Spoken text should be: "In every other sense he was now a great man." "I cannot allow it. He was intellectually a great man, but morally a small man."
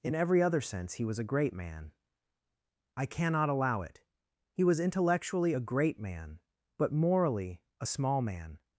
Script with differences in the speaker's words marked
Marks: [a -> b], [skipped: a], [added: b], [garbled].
"In every other sense he was [skipped: now] a great man." "I cannot allow it. He was intellectually a great man, but morally a small man."